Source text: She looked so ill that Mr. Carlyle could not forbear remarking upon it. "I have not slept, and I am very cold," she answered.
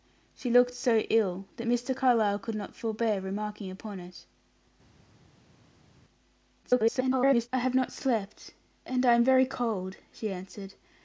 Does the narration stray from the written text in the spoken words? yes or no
yes